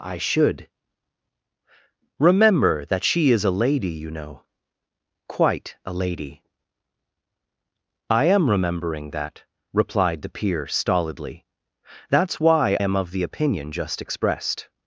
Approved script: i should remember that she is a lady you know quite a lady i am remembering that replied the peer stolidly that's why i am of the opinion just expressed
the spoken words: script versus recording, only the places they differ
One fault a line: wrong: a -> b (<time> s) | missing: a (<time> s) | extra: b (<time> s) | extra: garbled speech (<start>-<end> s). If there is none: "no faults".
missing: i (12.8 s)